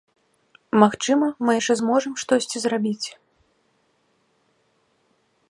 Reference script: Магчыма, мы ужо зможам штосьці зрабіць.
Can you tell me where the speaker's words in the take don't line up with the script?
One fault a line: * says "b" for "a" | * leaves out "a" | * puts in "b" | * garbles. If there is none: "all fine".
* says "яшчэ" for "ужо"